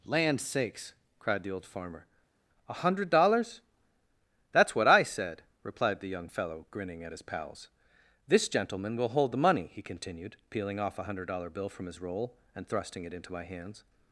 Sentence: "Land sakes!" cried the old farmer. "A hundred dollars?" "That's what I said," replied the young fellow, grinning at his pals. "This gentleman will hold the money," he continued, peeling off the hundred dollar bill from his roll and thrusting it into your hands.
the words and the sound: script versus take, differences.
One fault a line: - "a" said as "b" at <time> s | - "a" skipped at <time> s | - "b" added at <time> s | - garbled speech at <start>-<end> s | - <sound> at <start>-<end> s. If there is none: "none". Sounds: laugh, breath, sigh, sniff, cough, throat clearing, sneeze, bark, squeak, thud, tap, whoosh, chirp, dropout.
- "the" said as "a" at 11.0 s
- "your" said as "my" at 13.3 s